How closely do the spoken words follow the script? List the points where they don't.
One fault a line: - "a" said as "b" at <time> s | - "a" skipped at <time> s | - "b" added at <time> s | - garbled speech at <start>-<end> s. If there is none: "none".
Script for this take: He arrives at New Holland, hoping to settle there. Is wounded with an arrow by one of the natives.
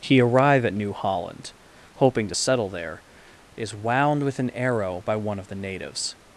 - "arrives" said as "arrive" at 0.2 s
- "wounded" said as "wound" at 3.7 s